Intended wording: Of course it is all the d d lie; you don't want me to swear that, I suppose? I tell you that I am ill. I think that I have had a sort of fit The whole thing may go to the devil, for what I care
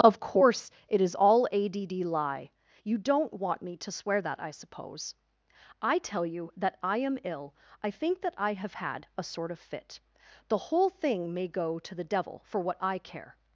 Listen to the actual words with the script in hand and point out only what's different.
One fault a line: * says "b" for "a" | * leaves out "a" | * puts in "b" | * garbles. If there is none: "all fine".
* says "a" for "the"